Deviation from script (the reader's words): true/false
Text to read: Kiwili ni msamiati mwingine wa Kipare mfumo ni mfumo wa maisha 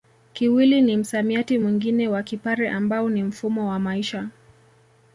true